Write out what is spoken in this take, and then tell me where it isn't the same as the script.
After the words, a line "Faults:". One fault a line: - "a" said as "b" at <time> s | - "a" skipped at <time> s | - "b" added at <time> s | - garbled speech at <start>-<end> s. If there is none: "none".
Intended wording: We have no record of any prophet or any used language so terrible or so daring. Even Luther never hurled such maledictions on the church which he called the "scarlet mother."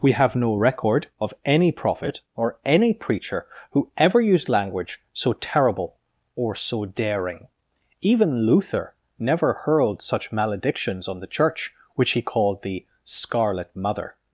We have no record of any prophet or any preacher who ever used language so terrible or so daring. Even Luther never hurled such maledictions on the church which he called the "scarlet mother."
Faults:
- "preacher who ever" added at 2.9 s